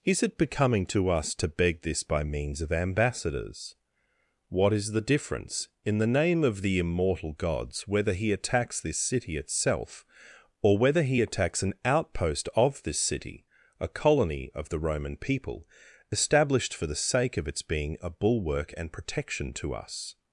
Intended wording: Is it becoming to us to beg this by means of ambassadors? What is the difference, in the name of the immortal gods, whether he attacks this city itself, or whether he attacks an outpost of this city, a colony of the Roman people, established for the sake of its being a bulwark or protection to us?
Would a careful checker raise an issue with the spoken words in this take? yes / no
yes